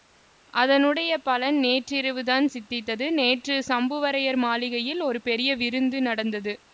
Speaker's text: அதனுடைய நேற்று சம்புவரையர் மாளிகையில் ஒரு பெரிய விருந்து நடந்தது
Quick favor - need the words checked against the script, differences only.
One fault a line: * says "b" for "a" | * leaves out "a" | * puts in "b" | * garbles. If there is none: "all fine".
* puts in "பலன் நேற்றிரவுதான் சித்தித்தது"